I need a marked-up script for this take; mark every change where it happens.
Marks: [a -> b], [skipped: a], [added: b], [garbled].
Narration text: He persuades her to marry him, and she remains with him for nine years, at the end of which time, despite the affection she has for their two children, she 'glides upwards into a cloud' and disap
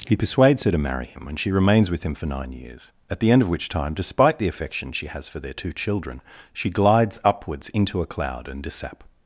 He persuades her to marry him, and she remains with him for nine years, at the end of which time, despite the affection she has for their two children, she 'glides upwards into a cloud' and disap